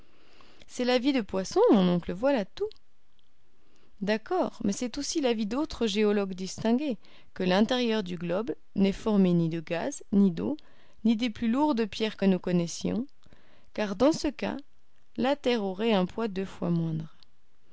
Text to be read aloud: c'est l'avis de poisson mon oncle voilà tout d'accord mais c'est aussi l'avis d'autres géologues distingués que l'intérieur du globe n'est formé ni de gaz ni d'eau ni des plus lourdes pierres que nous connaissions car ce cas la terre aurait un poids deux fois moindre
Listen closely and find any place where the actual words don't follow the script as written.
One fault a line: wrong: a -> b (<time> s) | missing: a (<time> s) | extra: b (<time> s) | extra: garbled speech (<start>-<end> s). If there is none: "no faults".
extra: dans (14.0 s)